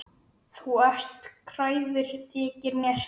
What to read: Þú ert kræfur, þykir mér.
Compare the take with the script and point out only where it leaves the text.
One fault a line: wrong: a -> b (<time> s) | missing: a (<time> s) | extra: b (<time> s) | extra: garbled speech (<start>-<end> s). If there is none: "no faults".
no faults